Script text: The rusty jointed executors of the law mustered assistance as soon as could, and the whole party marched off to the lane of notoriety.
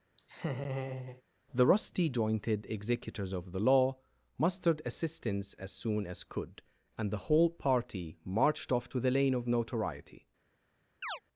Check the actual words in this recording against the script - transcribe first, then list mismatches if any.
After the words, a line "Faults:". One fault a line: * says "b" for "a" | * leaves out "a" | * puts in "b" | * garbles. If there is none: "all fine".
The rusty jointed executors of the law mustered assistance as soon as could, and the whole party marched off to the lane of notoriety.
Faults:
all fine